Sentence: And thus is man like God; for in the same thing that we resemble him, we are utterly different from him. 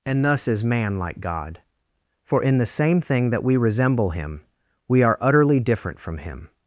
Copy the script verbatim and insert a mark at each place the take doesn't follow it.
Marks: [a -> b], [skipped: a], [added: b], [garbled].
And thus is man like God; for in the same thing that we resemble him, we are utterly different from him.